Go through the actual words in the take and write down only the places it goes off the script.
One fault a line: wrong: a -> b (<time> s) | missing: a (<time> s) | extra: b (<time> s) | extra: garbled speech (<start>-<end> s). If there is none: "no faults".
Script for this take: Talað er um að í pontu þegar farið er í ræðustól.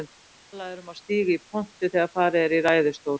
extra: stíga (1.0 s)